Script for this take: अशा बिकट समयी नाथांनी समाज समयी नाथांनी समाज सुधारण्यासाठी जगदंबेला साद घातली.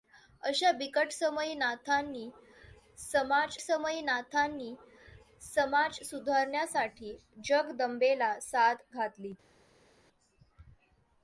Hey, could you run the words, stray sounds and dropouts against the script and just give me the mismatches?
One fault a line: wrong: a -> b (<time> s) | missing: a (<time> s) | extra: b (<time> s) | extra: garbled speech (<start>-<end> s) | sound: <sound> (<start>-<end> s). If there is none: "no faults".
no faults